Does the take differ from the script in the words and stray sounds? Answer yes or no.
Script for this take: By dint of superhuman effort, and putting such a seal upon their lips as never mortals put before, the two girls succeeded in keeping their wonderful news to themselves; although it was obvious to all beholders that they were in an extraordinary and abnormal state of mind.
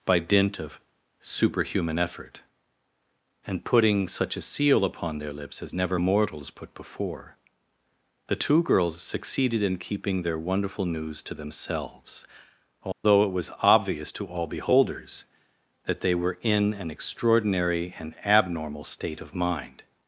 yes